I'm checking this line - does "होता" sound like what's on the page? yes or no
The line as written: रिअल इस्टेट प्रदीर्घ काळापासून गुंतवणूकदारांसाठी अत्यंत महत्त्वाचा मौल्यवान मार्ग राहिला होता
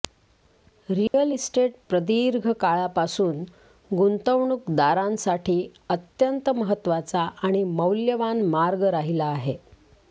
no